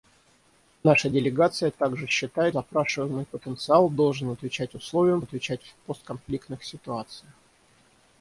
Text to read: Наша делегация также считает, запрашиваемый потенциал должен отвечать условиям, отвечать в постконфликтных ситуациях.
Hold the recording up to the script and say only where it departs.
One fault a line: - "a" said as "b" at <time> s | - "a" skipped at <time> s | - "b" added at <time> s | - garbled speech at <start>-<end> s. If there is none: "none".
none